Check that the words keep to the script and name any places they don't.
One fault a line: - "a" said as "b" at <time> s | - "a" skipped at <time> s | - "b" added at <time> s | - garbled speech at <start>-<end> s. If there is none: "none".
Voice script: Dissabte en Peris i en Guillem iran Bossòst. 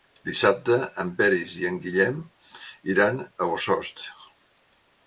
- "a" added at 3.2 s